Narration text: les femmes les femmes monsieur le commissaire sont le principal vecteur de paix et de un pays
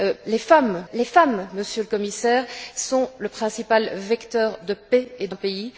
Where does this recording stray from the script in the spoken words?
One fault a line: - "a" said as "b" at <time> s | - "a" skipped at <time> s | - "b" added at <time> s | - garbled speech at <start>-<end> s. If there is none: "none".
none